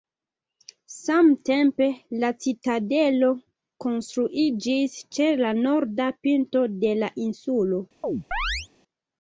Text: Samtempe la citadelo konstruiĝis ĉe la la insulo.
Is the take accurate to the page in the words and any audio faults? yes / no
no